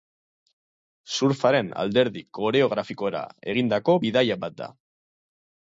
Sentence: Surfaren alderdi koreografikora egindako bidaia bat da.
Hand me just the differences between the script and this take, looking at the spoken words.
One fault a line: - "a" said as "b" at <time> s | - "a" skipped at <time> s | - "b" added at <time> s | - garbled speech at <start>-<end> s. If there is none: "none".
none